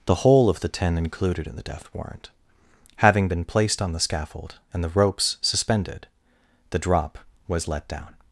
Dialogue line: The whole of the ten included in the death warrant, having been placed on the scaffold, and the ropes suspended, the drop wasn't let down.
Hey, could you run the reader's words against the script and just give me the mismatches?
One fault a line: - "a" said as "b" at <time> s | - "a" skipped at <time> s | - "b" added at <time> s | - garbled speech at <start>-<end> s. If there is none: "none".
- "wasn't" said as "was" at 7.5 s